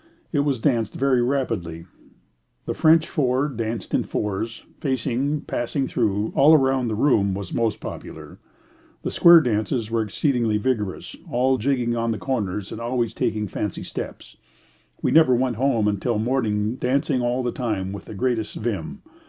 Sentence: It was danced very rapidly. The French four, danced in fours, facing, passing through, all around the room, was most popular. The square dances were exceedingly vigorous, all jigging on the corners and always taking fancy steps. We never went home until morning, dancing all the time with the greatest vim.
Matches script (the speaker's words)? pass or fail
pass